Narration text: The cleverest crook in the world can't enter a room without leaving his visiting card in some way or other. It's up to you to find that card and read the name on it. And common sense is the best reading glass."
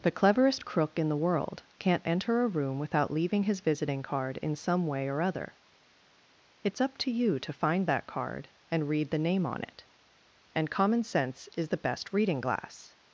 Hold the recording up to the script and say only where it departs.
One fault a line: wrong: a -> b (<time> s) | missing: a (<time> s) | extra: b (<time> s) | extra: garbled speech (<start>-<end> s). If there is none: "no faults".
no faults